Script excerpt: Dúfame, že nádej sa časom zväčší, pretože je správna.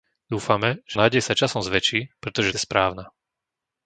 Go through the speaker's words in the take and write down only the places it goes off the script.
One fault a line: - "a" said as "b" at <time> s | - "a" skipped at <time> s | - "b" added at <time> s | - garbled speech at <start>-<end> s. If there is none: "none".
none